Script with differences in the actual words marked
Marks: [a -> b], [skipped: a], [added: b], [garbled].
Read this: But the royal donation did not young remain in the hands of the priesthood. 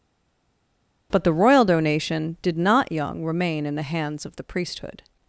But the royal donation did not young remain in the hands of the priesthood.